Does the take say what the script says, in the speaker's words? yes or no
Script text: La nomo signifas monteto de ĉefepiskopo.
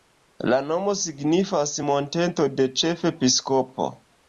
yes